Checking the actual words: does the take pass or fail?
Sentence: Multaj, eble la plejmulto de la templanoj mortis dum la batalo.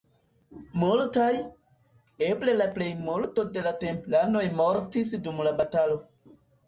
pass